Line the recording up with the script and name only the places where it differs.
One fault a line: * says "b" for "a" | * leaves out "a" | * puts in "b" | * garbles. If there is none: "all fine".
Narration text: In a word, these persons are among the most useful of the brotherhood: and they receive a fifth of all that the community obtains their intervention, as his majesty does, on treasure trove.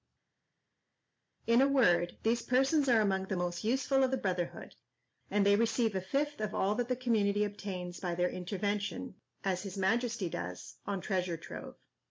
* puts in "by"